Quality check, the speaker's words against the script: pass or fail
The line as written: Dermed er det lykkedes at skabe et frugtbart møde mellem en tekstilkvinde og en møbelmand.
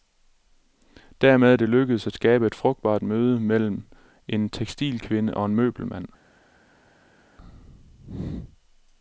pass